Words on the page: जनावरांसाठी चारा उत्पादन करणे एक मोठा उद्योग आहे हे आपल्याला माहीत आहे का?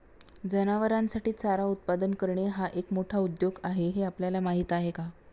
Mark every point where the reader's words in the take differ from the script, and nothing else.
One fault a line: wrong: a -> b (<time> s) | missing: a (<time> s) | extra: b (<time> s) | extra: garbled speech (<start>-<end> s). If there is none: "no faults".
extra: हा (2.5 s)